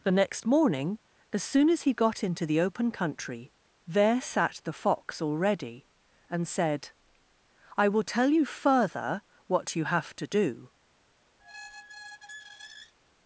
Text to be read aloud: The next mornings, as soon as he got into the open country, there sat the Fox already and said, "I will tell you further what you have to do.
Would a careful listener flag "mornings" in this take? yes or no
yes